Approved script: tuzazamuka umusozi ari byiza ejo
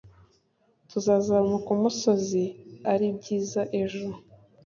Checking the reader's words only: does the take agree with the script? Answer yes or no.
yes